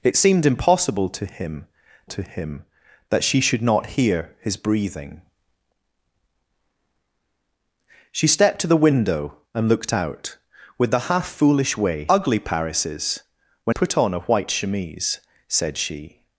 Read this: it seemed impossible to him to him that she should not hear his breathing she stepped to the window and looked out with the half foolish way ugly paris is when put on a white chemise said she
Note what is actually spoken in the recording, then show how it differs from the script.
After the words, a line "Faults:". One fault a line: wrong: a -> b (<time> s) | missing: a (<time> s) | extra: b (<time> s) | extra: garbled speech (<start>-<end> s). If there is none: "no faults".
it seemed impossible to him to him that she should not hear his breathing she stepped to the window and looked out with the half foolish way ugly paris is when put on a white chemise said she
Faults:
no faults